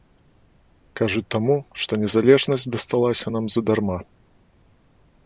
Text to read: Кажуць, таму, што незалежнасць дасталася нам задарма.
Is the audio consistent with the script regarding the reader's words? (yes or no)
yes